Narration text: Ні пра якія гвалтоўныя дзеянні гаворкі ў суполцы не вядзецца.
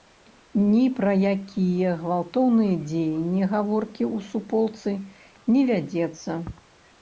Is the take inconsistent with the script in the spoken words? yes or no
no